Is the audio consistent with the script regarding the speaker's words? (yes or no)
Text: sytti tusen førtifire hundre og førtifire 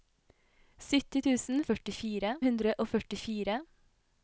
yes